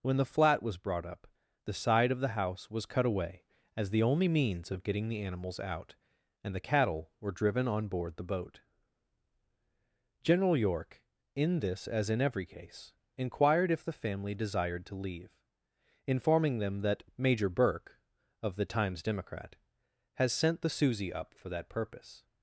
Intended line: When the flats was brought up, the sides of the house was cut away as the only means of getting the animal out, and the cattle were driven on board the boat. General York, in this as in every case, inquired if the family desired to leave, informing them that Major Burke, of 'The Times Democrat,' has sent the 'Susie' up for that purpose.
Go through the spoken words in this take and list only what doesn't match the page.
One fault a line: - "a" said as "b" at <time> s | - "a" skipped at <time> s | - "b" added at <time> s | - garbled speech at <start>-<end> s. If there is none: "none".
- "flats" said as "flat" at 0.2 s
- "sides" said as "side" at 1.7 s
- "animal" said as "animals" at 5.2 s